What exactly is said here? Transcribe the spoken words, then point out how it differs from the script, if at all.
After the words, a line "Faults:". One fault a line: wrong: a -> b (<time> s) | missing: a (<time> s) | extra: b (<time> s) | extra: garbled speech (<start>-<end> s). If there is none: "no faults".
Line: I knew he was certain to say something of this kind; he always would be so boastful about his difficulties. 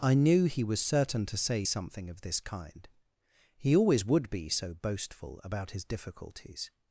I knew he was certain to say something of this kind; he always would be so boastful about his difficulties.
Faults:
no faults